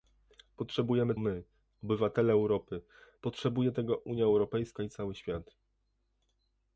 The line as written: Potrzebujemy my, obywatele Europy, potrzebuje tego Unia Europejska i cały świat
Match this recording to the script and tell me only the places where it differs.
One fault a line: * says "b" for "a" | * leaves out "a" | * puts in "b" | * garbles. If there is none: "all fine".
all fine